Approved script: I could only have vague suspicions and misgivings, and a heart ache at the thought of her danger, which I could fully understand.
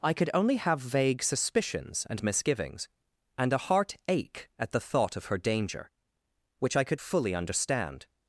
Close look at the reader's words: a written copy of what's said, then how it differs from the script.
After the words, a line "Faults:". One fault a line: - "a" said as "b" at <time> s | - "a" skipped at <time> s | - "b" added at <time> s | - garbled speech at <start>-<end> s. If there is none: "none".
I could only have vague suspicions and misgivings, and a heart ache at the thought of her danger, which I could fully understand.
Faults:
none